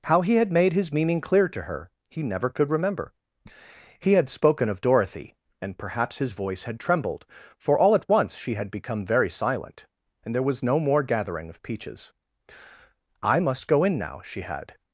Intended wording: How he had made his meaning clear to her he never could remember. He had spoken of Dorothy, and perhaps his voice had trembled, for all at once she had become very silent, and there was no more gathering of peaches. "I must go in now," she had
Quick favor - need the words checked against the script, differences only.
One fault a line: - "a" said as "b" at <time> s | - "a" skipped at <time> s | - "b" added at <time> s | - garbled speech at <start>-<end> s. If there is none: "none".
none